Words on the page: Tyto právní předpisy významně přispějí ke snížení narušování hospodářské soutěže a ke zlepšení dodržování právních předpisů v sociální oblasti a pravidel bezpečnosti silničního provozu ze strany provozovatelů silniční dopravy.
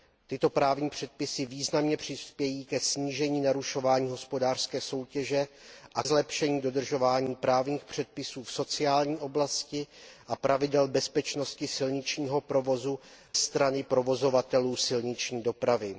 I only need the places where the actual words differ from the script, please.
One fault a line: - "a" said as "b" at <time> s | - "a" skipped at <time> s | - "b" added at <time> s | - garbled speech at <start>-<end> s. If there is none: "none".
- "ke" skipped at 6.0 s
- "ze" skipped at 13.0 s